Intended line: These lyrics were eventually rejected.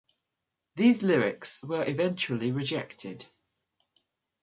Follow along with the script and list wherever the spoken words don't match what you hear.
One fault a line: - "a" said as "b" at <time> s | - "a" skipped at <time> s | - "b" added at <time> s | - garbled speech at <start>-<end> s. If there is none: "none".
none